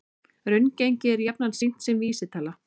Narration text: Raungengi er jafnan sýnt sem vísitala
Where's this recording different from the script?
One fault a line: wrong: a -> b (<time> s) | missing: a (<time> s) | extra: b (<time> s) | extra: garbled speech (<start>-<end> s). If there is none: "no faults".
no faults